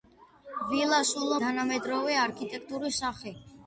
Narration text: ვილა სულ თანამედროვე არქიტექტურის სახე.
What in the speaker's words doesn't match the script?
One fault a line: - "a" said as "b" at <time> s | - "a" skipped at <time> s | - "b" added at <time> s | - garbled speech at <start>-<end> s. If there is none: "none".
none